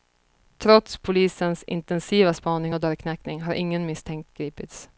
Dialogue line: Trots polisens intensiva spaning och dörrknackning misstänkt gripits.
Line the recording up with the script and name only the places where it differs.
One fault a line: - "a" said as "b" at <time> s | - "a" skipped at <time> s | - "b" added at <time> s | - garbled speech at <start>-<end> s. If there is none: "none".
- "har ingen" added at 3.4 s